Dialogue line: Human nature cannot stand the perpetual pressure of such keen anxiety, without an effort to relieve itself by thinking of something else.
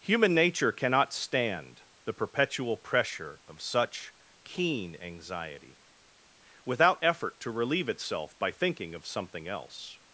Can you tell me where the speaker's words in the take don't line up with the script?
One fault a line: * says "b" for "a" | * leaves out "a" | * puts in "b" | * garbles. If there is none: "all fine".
* leaves out "an"